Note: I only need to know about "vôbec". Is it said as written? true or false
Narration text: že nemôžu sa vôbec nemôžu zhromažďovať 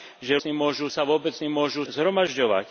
true